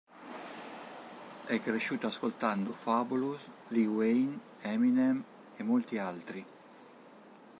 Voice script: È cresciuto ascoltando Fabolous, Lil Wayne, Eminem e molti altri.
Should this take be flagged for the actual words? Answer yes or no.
no